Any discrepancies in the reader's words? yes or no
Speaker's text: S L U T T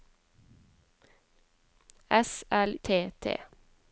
yes